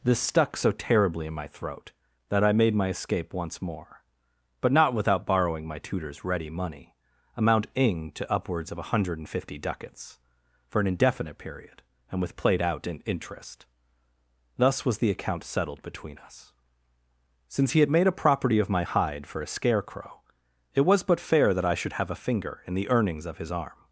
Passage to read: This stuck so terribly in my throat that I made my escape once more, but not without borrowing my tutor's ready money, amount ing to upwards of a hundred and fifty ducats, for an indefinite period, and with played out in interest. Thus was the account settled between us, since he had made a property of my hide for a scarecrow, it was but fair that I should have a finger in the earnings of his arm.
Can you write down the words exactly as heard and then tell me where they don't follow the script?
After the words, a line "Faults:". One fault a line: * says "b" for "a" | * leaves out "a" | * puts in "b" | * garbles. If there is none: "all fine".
This stuck so terribly in my throat that I made my escape once more, but not without borrowing my tutor's ready money, amount ing to upwards of a hundred and fifty ducats, for an indefinite period, and with played out in interest. Thus was the account settled between us, since he had made a property of my hide for a scarecrow, it was but fair that I should have a finger in the earnings of his arm.
Faults:
all fine